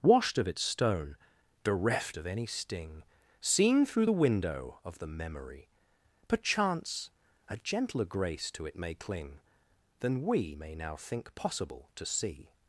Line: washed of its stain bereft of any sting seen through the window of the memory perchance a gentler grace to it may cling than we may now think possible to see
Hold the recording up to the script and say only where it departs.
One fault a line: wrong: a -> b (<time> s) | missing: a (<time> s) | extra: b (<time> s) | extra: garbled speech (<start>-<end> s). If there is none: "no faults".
wrong: stain -> stone (0.6 s)